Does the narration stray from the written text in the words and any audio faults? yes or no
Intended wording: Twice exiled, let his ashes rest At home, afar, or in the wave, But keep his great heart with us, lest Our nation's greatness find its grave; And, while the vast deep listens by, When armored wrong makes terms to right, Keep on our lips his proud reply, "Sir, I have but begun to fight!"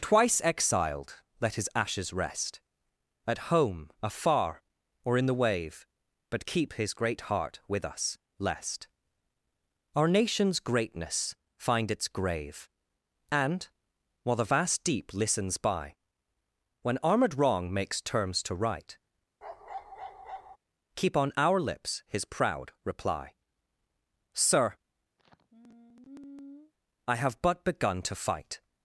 yes